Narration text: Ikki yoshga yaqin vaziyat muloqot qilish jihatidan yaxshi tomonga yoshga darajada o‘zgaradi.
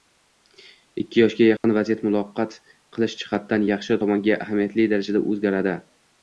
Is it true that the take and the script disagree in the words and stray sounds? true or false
true